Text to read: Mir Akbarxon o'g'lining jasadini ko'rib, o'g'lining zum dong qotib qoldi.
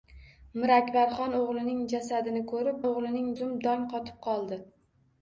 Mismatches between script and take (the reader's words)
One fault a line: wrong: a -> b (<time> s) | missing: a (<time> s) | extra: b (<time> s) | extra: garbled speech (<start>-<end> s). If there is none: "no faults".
no faults